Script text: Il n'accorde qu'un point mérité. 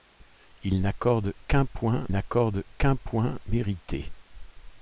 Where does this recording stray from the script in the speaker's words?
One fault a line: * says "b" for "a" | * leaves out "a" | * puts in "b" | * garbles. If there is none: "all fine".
* puts in "n'accorde qu'un point"